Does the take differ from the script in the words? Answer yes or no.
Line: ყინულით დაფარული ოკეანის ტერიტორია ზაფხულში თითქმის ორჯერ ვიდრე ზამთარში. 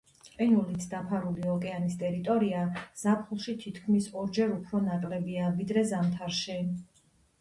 yes